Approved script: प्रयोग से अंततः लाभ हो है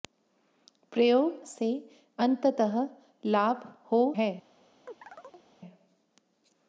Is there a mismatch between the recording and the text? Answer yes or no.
no